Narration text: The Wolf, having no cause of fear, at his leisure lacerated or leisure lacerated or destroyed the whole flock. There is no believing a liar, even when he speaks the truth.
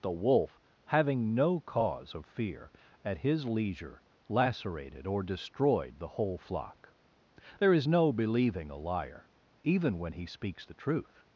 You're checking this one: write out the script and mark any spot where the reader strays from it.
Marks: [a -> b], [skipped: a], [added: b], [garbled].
The Wolf, having no cause of fear, at his leisure lacerated or [skipped: leisure lacerated or] destroyed the whole flock. There is no believing a liar, even when he speaks the truth.